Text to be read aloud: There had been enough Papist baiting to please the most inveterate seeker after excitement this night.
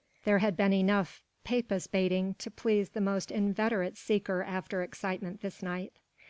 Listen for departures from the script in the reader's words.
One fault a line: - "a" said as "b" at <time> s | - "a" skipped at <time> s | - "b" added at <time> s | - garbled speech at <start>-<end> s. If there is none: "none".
none